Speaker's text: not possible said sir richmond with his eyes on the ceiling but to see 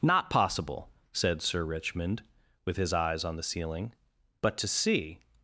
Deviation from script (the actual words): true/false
false